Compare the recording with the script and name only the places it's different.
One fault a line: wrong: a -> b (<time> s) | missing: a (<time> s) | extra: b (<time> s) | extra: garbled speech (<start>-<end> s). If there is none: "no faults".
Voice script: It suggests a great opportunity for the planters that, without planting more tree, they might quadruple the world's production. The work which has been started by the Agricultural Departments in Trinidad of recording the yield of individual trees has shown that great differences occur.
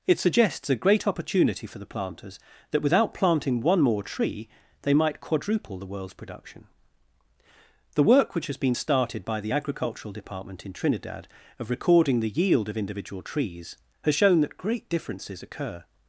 extra: one (3.6 s)
wrong: Departments -> Department (10.1 s)